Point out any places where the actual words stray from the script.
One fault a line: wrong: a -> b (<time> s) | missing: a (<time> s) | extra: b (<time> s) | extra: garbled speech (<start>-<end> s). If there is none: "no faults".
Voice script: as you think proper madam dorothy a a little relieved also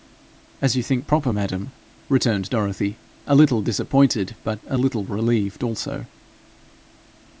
extra: returned (2.1 s)
extra: little disappointed but (3.3 s)